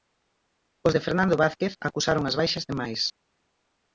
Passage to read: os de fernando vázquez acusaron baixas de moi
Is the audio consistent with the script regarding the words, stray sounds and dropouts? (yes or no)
no